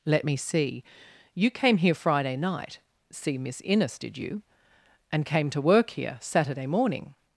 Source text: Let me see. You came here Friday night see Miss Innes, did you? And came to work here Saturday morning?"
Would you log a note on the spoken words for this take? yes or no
no